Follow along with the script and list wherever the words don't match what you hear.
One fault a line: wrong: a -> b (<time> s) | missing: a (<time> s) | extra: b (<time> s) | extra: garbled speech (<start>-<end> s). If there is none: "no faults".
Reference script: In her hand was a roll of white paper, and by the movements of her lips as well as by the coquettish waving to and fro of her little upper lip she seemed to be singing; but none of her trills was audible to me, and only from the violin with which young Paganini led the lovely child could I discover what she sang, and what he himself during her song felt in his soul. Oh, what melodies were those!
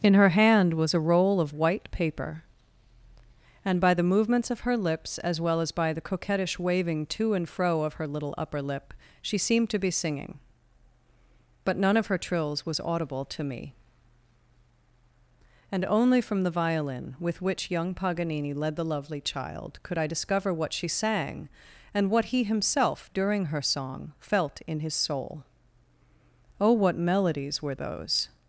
no faults